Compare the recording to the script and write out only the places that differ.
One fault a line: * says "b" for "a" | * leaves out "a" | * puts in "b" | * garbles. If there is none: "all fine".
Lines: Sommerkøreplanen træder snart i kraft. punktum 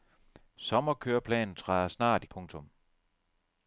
* leaves out "kraft"